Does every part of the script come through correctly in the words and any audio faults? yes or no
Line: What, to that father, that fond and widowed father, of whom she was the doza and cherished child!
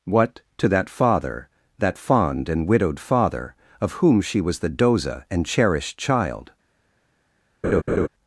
no